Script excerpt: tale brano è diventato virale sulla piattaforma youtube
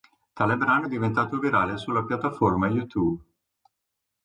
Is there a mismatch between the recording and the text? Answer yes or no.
no